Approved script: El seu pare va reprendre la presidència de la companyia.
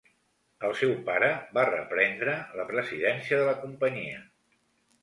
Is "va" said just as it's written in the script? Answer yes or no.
yes